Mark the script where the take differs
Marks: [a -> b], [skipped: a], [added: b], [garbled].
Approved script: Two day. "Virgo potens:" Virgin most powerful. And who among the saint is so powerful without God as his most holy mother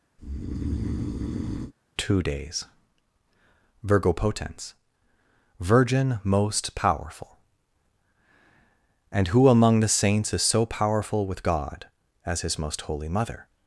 Two [day. -> days] "Virgo potens:" Virgin most powerful. And who among the [saint -> saints] is so powerful [without -> with] God as his most holy mother